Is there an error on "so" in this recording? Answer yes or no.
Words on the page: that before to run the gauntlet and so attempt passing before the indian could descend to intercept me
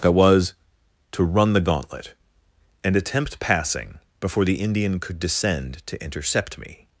yes